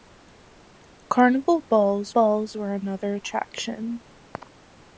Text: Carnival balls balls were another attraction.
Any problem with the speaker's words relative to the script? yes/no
no